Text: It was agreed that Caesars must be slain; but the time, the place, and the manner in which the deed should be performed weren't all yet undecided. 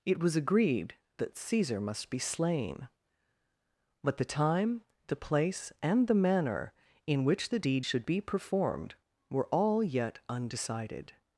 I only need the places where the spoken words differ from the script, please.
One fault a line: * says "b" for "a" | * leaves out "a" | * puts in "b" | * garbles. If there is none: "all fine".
* says "Caesar" for "Caesars"
* says "were" for "weren't"